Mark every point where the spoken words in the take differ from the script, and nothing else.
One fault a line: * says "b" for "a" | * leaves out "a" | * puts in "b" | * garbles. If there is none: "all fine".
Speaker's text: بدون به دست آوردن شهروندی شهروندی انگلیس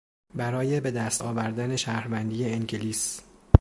* says "برای" for "بدون"
* leaves out "شهروندی"